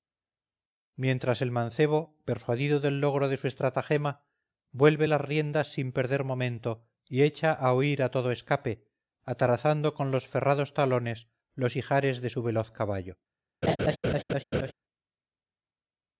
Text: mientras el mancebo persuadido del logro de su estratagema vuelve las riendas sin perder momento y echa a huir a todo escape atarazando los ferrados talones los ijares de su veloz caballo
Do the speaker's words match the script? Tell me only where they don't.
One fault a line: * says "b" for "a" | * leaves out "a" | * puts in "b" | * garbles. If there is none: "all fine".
* puts in "con"